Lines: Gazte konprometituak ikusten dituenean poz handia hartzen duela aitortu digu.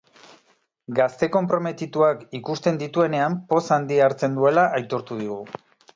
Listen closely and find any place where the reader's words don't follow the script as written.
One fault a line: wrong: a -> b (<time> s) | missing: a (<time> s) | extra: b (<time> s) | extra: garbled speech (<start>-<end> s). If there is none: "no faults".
no faults